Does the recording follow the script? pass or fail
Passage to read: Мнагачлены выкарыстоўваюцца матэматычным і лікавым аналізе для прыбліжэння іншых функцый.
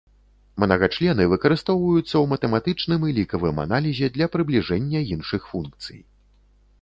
fail